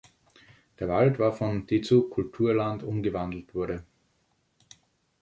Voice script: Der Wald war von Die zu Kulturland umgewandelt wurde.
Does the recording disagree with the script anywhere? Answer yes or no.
no